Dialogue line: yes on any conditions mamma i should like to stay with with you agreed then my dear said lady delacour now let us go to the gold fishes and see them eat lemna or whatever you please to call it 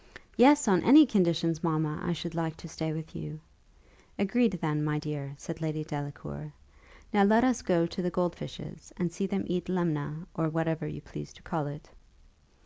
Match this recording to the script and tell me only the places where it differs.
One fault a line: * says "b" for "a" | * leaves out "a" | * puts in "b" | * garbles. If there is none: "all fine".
* leaves out "with"